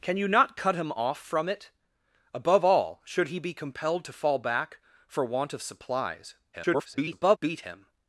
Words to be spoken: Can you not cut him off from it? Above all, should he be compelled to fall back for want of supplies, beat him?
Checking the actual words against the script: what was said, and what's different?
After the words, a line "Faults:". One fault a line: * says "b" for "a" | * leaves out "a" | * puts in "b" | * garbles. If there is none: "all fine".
Can you not cut him off from it? Above all, should he be compelled to fall back for want of supplies, [garbled] beat him?
Faults:
* garbles